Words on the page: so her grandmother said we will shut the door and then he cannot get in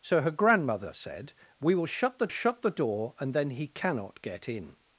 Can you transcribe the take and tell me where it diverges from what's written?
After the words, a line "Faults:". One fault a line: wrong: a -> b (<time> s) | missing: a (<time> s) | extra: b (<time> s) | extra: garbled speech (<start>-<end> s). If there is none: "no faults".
so her grandmother said we will shut the shut the door and then he cannot get in
Faults:
extra: shut the (2.3 s)